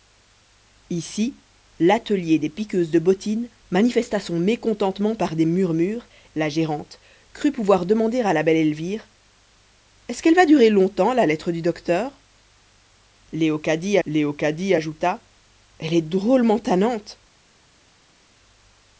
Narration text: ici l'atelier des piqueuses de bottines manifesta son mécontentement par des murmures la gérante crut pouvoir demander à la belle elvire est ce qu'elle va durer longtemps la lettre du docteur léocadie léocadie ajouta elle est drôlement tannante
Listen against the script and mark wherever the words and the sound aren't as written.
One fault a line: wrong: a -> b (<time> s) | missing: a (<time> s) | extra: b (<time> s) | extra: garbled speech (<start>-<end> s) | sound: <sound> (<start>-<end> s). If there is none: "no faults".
no faults